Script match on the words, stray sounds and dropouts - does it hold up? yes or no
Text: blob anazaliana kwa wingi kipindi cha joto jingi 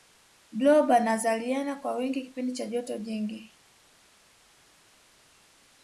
yes